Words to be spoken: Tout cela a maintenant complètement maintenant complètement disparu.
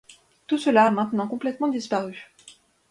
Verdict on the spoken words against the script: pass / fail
fail